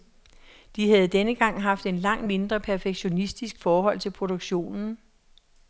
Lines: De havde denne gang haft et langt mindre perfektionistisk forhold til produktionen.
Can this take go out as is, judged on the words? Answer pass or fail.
pass